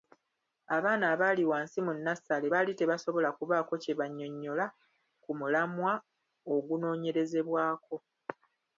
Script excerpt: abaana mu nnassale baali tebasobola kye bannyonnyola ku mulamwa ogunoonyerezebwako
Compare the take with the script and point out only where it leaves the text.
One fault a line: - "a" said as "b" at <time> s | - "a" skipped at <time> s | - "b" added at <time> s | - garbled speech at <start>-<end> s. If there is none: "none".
- "abaali wansi" added at 1.1 s
- "kubaako" added at 3.4 s